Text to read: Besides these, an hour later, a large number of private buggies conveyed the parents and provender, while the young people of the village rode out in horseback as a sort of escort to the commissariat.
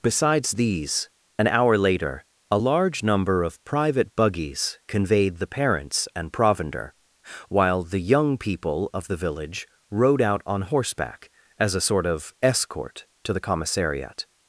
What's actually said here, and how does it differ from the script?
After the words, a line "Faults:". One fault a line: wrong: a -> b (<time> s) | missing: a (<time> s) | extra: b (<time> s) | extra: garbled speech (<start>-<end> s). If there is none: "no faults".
Besides these, an hour later, a large number of private buggies conveyed the parents and provender, while the young people of the village rode out on horseback as a sort of escort to the commissariat.
Faults:
wrong: in -> on (10.5 s)